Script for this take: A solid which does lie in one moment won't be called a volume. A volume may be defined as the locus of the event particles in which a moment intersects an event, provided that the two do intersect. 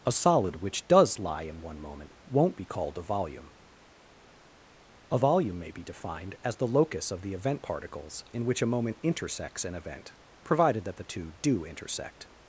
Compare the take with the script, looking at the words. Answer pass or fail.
pass